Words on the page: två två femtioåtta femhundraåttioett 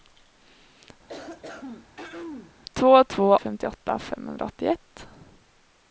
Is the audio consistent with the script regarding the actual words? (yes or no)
yes